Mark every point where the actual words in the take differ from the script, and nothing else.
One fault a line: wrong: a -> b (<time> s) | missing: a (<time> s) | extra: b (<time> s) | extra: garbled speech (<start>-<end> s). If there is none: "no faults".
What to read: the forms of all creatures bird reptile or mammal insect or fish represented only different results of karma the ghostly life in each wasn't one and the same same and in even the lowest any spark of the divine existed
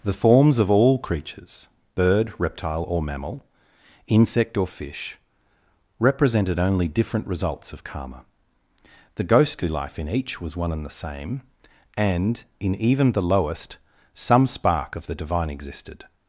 wrong: wasn't -> was (10.4 s)
missing: same (11.4 s)
wrong: any -> some (14.1 s)